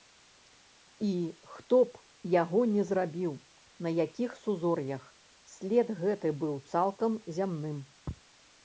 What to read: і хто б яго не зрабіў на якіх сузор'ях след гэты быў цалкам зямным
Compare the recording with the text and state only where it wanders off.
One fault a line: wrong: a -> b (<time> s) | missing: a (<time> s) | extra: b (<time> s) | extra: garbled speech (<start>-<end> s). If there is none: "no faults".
no faults